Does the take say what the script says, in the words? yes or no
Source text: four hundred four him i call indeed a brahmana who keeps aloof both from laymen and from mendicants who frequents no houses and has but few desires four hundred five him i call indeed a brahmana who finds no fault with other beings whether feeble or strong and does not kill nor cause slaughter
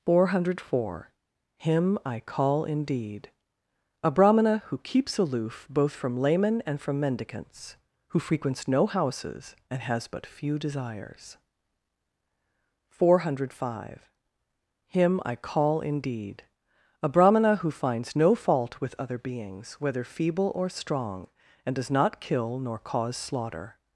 yes